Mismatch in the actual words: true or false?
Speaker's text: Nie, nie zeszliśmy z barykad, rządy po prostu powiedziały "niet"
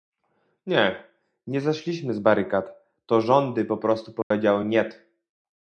true